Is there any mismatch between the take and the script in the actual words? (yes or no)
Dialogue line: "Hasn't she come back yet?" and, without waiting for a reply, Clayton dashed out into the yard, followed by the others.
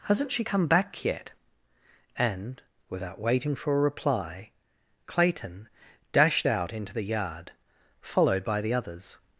no